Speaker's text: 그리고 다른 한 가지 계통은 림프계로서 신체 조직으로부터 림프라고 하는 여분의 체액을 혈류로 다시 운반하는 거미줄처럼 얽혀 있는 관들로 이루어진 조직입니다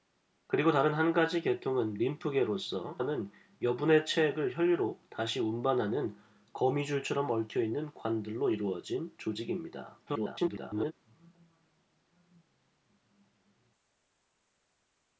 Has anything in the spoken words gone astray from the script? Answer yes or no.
yes